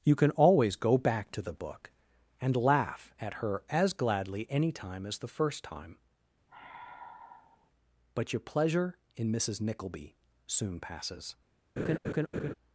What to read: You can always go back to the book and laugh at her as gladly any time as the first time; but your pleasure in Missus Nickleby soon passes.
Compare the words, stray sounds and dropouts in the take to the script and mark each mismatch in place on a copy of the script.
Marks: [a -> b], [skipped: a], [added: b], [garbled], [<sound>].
You can always go back to the book and laugh at her as gladly any time as the first time; [sigh] but your pleasure in Missus Nickleby soon passes. [laugh]